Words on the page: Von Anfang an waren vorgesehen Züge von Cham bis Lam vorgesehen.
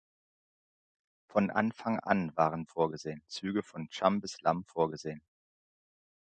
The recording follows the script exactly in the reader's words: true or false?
true